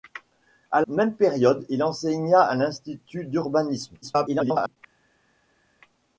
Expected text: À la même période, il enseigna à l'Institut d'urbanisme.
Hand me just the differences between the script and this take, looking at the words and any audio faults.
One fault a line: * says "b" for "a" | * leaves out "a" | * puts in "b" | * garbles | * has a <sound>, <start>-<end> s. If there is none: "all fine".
* leaves out "la"
* garbles